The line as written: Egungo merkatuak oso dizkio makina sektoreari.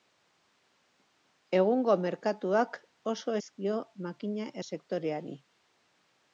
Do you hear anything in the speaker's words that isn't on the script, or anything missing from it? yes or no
no